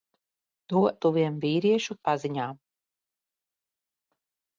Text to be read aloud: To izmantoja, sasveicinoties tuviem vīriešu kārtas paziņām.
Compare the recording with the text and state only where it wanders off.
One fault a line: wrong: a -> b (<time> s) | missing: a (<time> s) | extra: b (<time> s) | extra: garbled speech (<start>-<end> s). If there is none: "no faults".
missing: izmantoja sasveicinoties (0.8 s)
missing: kārtas (2.0 s)